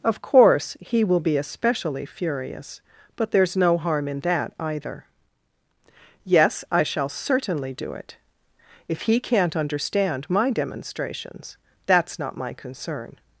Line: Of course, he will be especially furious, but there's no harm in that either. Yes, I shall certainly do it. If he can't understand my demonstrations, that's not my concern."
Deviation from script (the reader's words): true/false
false